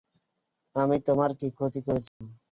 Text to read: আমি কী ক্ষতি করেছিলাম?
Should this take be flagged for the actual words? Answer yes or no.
yes